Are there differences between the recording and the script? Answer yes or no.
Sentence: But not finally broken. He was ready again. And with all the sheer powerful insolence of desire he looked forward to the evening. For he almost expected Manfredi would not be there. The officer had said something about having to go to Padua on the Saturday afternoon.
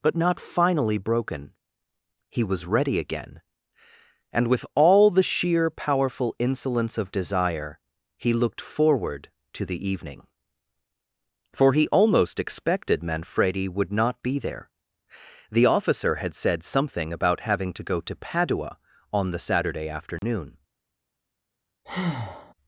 no